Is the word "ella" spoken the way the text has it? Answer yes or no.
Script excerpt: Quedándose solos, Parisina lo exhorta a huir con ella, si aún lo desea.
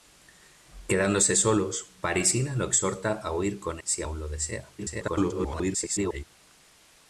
no